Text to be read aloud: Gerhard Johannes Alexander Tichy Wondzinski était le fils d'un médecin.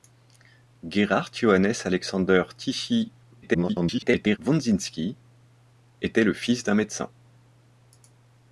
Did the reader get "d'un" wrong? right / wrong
right